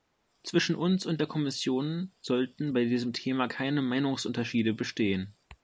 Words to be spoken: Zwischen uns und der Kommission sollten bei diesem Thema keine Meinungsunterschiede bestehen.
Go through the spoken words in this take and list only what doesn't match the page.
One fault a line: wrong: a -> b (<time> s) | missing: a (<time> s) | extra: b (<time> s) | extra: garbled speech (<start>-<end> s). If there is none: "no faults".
no faults